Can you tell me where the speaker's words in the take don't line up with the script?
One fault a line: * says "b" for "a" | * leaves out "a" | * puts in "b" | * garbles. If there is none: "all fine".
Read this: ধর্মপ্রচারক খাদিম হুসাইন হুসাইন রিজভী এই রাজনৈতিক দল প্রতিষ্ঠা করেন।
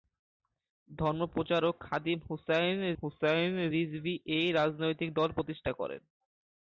all fine